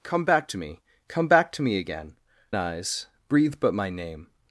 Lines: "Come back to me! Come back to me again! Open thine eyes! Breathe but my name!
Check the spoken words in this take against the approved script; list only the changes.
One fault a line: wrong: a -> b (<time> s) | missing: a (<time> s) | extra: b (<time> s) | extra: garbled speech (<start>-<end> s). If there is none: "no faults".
missing: Open thine (2.2 s)